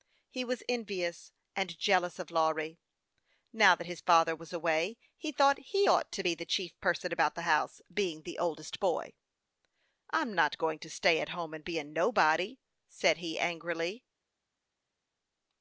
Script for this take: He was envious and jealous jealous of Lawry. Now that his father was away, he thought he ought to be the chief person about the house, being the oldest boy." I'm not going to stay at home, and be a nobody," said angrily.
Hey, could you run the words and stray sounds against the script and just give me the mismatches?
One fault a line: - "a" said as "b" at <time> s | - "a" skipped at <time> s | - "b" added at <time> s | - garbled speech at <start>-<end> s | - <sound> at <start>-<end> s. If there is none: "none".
- "jealous" skipped at 2.2 s
- "he" added at 13.2 s